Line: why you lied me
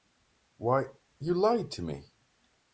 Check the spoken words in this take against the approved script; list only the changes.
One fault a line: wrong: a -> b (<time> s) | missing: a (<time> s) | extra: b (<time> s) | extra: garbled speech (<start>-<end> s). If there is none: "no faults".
extra: to (1.7 s)